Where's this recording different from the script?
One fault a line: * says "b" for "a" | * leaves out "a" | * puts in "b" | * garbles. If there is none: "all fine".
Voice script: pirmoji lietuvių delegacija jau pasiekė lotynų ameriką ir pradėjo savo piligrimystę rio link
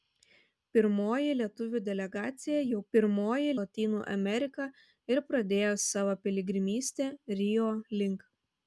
* says "pirmoji" for "pasiekė"